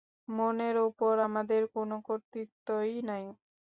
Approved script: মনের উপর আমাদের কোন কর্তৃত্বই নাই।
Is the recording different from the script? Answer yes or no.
no